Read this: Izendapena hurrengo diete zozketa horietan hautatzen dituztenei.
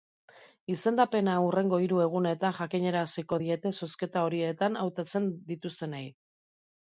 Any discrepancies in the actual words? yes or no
yes